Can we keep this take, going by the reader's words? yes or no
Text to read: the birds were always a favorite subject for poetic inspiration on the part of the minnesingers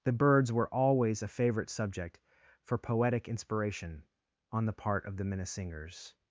yes